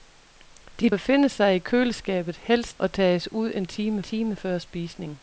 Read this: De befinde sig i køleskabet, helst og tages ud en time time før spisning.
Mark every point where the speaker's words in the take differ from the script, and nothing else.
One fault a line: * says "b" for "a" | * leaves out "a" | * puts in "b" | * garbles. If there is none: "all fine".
all fine